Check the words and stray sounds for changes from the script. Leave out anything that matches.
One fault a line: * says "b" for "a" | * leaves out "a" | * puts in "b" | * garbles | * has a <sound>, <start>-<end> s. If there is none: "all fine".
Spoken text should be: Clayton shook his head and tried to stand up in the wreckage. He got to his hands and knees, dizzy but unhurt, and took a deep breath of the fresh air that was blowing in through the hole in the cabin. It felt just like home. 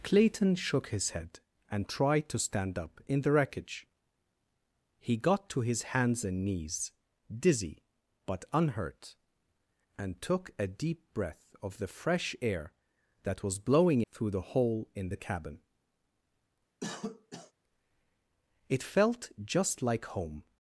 * leaves out "in"
* has a cough, 16.8-17.5 s